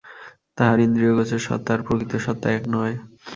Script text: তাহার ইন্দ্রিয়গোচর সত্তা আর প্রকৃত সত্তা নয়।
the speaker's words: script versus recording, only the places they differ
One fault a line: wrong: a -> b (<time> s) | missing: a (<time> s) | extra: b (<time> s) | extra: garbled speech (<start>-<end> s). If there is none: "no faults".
extra: এক (2.5 s)